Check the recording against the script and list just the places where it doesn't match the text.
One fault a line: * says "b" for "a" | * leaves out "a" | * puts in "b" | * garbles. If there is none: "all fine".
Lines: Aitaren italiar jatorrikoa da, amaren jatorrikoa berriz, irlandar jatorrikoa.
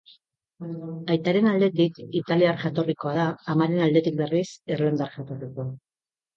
* puts in "aldetik"
* says "aldetik" for "jatorrikoa"